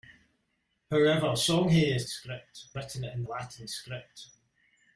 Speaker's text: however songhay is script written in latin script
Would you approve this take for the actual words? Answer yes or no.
yes